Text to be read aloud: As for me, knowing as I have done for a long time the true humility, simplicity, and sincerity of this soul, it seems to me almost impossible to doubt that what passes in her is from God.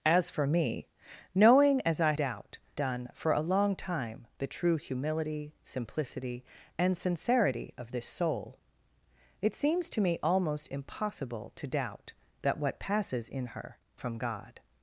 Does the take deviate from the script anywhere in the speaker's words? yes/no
yes